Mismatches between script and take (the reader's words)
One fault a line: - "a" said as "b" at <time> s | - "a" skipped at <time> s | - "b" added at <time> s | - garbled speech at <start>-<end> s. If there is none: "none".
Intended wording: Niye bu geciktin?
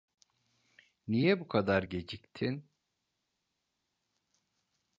- "kadar" added at 1.5 s